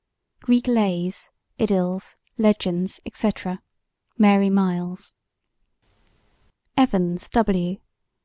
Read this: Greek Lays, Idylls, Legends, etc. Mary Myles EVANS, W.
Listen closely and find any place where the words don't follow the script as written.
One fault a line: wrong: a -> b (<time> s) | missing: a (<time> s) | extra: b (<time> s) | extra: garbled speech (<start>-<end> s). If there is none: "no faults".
no faults